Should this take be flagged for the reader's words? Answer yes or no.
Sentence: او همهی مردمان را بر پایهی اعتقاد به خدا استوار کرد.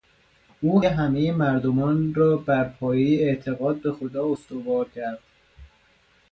no